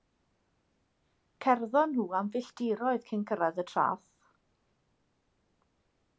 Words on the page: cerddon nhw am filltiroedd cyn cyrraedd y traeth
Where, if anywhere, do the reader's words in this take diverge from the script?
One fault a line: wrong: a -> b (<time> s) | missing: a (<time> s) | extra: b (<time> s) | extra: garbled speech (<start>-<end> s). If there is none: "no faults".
no faults